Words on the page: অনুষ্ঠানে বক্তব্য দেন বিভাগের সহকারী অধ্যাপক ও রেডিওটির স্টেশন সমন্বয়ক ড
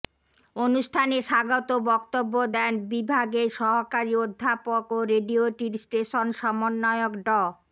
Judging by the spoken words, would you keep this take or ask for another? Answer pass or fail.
fail